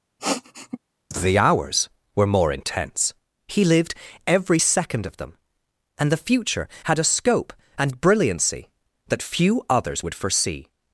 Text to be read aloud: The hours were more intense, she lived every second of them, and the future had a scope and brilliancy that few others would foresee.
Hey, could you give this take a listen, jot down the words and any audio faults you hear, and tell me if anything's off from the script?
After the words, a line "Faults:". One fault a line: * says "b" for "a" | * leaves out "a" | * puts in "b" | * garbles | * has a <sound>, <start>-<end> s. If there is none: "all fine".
The hours were more intense, he lived every second of them, and the future had a scope and brilliancy that few others would foresee.
Faults:
* has a sniff, 0.2-0.8 s
* says "he" for "she"